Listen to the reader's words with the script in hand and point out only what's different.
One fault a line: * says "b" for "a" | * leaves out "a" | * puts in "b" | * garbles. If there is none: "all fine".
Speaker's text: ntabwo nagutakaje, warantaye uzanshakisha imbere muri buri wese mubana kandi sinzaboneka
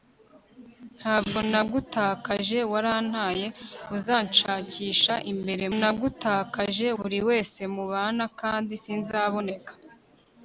* says "nagutakaje" for "muri"